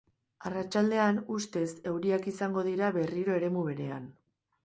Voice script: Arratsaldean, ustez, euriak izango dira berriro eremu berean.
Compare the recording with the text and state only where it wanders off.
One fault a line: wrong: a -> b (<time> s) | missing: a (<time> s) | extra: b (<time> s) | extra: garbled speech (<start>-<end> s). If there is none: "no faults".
no faults